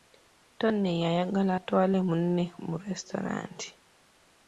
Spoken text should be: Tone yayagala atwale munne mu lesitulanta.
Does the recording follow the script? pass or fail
pass